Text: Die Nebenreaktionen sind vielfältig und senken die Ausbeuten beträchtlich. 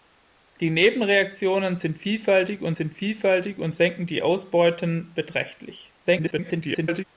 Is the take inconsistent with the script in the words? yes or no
yes